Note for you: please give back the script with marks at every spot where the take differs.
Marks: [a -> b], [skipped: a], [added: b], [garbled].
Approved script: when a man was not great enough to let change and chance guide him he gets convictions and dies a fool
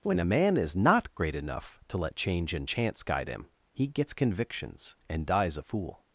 when a man [was -> is] not great enough to let change and chance guide him he gets convictions and dies a fool